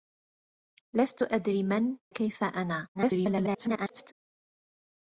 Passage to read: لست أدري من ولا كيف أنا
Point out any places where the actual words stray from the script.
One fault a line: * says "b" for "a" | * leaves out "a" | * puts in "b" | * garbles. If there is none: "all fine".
* leaves out "ولا"
* garbles